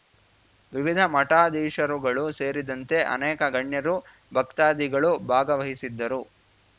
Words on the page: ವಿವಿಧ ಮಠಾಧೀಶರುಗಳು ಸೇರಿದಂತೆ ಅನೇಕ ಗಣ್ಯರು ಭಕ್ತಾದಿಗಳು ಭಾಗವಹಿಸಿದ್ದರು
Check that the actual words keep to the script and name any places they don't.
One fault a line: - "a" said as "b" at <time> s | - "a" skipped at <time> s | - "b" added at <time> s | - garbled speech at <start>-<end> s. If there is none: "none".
none